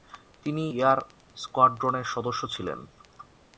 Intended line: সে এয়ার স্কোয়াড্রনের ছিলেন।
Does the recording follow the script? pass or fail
fail